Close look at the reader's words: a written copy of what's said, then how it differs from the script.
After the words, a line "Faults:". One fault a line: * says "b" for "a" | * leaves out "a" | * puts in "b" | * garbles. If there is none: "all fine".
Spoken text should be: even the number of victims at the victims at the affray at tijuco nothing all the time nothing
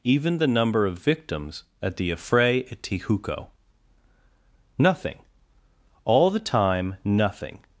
even the number of victims at the affray at tijuco nothing all the time nothing
Faults:
* leaves out "victims at the"